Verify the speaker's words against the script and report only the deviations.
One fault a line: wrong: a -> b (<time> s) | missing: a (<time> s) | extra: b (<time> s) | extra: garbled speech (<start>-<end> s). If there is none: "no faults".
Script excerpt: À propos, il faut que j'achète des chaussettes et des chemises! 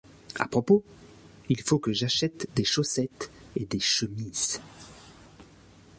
no faults